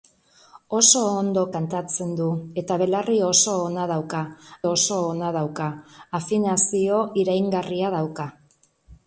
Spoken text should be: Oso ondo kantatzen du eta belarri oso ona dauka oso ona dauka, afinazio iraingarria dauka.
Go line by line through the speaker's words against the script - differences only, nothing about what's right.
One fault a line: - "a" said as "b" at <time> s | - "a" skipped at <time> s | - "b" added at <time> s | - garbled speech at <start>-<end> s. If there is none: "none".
none